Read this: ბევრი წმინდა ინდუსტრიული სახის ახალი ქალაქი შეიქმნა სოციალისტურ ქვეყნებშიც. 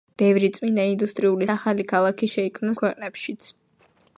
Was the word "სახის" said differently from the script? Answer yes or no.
yes